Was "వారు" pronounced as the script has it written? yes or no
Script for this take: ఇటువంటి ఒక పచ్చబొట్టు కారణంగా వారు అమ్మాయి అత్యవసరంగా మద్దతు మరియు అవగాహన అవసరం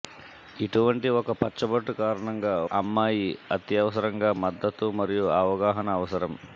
no